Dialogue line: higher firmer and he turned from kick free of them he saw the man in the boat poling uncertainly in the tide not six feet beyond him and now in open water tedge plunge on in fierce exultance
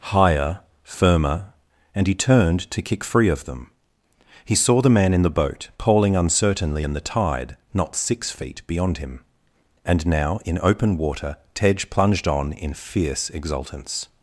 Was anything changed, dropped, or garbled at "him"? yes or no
no